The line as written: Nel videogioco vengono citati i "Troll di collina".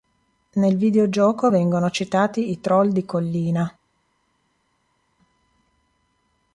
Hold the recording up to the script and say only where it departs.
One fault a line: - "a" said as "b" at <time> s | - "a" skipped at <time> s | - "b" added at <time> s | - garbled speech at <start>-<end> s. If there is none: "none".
none